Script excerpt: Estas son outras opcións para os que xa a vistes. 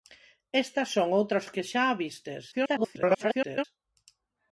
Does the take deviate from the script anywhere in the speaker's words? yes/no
yes